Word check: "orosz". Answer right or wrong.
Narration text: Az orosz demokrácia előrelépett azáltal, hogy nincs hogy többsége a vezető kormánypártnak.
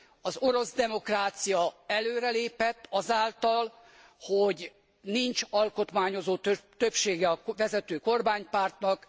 right